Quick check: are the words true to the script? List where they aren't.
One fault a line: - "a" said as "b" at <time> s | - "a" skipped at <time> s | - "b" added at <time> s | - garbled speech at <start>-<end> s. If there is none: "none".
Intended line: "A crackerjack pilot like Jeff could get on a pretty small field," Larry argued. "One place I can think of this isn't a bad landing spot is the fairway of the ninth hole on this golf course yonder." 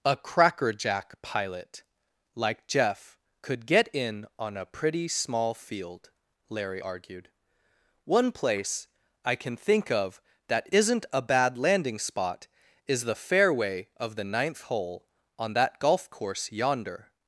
- "in" added at 3.9 s
- "this" said as "that" at 10.5 s
- "this" said as "that" at 15.5 s